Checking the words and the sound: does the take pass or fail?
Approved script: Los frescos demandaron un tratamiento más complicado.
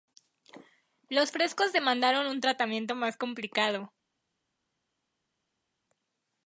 pass